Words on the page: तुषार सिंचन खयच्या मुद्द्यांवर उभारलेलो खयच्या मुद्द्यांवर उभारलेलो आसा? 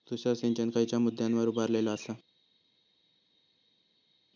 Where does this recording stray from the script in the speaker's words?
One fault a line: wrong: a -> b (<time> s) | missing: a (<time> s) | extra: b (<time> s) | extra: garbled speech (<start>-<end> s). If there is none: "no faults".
missing: खयच्या मुद्द्यांवर उभारलेलो (1.9 s)